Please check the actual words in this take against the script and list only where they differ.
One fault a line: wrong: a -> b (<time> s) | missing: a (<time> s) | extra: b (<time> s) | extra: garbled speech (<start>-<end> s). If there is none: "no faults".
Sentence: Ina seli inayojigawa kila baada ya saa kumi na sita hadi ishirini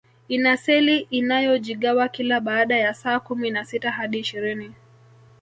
no faults